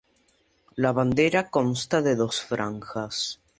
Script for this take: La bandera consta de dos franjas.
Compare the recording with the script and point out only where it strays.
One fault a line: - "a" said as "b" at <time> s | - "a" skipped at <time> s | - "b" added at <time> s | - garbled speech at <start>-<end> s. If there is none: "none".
none